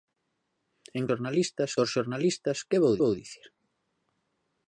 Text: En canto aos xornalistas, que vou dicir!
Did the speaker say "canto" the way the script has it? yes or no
no